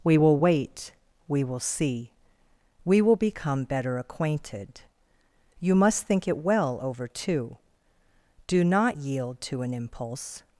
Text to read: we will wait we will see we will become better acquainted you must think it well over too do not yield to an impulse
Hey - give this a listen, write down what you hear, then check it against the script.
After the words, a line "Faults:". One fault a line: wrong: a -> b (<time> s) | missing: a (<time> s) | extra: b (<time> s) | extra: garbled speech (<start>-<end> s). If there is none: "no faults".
we will wait we will see we will become better acquainted you must think it well over too do not yield to an impulse
Faults:
no faults